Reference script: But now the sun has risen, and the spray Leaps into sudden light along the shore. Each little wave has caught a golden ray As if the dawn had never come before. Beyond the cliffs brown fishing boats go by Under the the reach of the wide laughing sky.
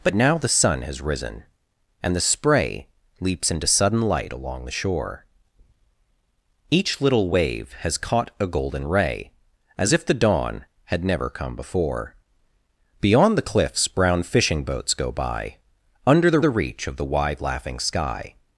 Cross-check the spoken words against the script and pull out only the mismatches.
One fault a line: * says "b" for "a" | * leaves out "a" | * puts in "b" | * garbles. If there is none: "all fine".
all fine